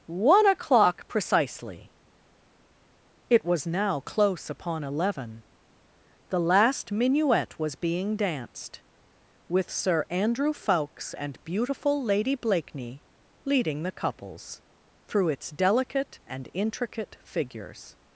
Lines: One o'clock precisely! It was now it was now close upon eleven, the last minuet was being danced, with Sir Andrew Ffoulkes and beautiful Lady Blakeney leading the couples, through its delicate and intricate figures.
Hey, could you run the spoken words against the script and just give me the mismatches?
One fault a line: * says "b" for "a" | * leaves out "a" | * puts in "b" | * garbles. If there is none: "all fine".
* leaves out "it was now"